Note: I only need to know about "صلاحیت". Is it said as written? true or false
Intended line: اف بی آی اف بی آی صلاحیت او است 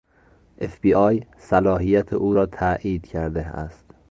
false